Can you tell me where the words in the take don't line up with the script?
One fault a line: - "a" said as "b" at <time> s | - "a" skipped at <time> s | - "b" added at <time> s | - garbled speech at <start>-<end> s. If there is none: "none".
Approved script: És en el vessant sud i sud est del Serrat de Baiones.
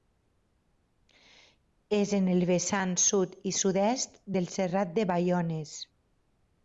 none